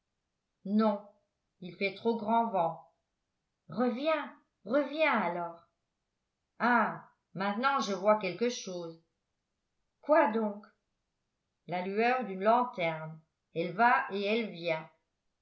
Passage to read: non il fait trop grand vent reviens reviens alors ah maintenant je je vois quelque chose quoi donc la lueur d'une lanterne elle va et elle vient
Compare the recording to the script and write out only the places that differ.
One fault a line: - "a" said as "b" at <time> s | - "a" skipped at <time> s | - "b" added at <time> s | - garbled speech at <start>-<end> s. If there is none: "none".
- "je" skipped at 7.9 s